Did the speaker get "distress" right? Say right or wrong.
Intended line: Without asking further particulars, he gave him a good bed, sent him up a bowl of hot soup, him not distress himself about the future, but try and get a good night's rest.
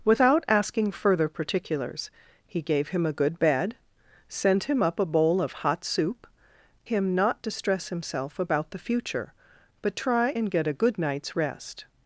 right